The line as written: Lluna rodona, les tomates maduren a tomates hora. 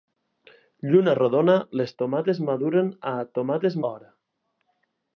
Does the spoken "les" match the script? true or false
true